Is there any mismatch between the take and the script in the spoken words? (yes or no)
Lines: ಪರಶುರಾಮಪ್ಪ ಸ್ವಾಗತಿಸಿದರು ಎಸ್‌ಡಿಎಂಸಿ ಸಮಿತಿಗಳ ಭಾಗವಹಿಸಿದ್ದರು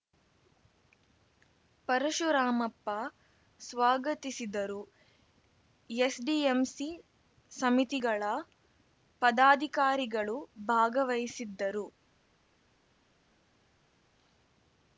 yes